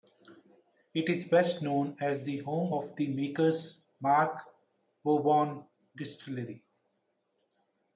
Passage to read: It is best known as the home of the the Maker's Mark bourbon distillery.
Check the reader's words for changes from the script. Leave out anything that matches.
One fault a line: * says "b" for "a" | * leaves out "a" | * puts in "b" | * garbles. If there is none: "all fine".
* leaves out "the"